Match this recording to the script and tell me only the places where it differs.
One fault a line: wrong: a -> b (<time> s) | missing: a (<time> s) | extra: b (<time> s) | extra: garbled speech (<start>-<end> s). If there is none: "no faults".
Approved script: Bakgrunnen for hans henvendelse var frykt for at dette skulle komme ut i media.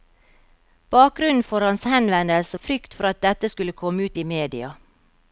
missing: var (2.6 s)